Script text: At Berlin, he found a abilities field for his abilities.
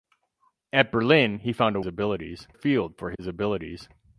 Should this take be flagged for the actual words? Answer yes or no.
no